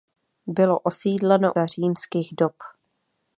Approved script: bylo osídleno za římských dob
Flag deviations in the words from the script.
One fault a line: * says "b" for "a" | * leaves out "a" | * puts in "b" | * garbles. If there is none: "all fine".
all fine